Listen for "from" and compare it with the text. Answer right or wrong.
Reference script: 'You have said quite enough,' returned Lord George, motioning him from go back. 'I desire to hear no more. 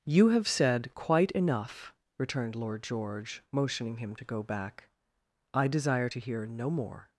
wrong